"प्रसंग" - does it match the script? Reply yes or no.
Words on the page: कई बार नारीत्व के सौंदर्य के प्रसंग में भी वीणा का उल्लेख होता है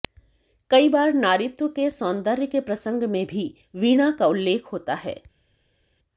yes